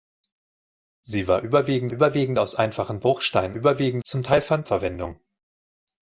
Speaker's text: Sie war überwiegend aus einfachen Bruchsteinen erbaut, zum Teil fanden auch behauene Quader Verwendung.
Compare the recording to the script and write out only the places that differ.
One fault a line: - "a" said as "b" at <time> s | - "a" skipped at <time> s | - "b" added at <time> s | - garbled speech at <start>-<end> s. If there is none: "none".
- "überwiegend" added at 1.9 s
- "erbaut" said as "überwiegend" at 3.5 s
- "auch behauene Quader" skipped at 4.7 s